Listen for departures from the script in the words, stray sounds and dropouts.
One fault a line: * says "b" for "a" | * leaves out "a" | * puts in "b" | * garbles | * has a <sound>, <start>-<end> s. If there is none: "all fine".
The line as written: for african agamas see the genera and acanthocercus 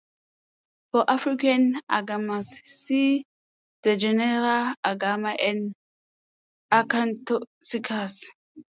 * puts in "agama"